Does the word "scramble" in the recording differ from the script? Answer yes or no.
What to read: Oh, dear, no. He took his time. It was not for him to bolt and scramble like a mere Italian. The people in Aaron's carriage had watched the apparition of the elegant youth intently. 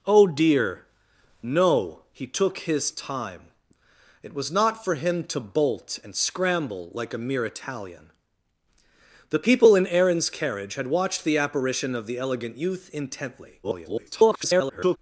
no